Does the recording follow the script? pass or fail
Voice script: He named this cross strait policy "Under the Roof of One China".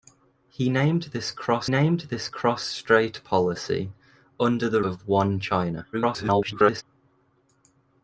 fail